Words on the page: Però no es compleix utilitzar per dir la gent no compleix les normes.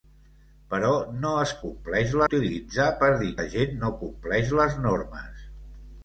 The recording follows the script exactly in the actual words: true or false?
true